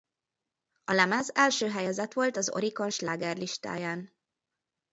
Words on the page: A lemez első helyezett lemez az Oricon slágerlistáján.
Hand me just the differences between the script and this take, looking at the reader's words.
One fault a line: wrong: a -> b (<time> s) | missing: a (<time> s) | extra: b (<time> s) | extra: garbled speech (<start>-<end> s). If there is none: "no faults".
wrong: lemez -> volt (2.1 s)